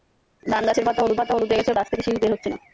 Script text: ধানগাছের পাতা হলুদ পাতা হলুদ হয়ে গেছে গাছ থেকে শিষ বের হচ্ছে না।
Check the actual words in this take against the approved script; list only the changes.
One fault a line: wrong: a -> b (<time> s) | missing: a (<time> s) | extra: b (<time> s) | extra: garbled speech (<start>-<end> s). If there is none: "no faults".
no faults